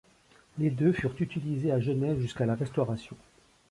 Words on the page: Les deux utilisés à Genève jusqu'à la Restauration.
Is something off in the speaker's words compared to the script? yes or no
yes